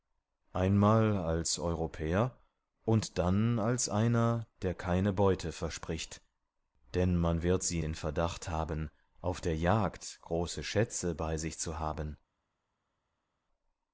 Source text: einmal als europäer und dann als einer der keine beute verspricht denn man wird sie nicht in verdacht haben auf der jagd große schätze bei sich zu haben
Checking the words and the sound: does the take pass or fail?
fail